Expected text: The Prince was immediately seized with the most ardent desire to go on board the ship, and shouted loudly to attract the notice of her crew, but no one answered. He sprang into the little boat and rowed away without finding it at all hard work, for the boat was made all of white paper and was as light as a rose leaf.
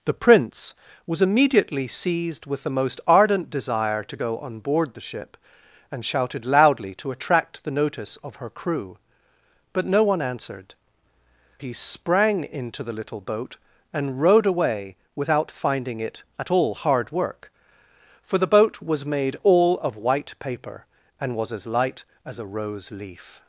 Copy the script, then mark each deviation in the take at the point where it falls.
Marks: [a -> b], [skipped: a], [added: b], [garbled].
The Prince was immediately seized with the most ardent desire to go on board the ship, and shouted loudly to attract the notice of her crew, but no one answered. He sprang into the little boat and rowed away without finding it at all hard work, for the boat was made all of white paper and was as light as a rose leaf.